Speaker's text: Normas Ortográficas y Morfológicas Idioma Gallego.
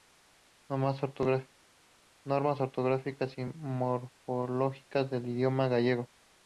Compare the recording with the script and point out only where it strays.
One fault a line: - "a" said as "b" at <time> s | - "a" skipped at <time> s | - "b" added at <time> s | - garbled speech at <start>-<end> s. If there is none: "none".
- "del" added at 5.1 s